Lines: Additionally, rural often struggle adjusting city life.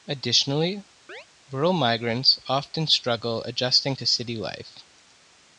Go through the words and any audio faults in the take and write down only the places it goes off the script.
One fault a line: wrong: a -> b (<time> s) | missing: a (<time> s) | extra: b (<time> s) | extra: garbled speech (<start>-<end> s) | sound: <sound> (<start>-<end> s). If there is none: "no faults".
sound: chirp (1.1-1.3 s)
extra: migrants (1.7 s)
extra: to (3.9 s)